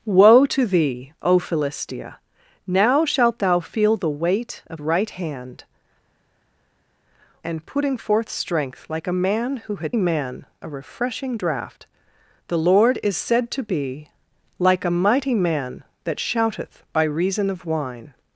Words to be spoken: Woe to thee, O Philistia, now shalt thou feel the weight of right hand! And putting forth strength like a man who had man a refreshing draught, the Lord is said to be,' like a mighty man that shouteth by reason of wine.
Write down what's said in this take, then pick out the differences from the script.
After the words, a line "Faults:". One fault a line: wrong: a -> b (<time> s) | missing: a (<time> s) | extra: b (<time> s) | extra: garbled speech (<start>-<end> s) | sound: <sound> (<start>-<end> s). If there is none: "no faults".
Woe to thee, O Philistia, now shalt thou feel the weight of right hand! And putting forth strength like a man who had man a refreshing draught, the Lord is said to be,' like a mighty man that shouteth by reason of wine.
Faults:
no faults